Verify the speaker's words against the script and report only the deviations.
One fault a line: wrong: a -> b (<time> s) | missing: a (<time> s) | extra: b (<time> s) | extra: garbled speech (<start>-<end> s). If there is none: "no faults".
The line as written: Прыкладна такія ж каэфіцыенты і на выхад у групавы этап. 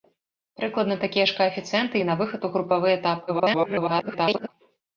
extra: garbled speech (3.3-4.5 s)